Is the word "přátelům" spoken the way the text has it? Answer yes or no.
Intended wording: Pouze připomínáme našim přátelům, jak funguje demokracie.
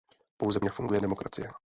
no